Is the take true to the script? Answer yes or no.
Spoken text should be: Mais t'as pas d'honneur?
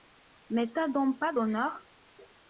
no